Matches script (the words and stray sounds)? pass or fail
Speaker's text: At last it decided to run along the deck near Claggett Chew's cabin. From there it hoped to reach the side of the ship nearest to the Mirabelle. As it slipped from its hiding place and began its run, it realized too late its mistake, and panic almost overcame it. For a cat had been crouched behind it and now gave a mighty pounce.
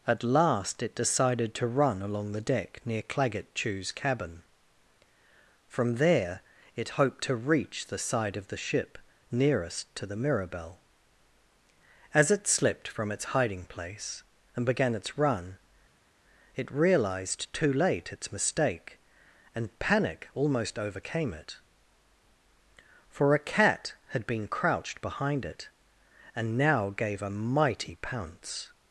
pass